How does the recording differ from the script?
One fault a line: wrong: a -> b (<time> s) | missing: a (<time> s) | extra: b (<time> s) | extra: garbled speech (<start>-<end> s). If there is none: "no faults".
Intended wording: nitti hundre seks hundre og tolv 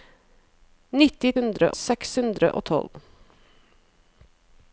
no faults